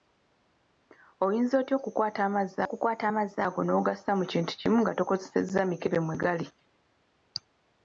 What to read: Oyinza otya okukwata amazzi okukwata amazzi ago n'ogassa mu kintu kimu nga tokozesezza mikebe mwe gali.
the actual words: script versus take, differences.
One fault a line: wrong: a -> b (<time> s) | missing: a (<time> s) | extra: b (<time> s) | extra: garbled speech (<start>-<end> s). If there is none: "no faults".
no faults